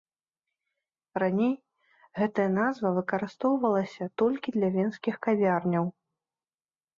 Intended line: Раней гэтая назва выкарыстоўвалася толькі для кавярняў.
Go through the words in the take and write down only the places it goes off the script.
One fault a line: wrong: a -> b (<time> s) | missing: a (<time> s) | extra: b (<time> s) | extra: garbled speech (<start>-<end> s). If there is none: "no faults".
extra: венскіх (4.8 s)